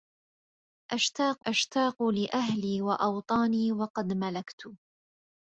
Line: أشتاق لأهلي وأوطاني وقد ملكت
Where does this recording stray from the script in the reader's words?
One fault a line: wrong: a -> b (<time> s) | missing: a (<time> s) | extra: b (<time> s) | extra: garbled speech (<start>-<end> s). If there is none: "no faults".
extra: أشتاق (1.5 s)